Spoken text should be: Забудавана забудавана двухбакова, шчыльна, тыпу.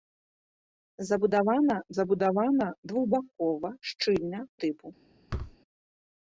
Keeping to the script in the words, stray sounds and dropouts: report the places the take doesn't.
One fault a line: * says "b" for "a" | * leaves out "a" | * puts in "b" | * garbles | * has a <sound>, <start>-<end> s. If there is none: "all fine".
* has a thud, 5.3-5.6 s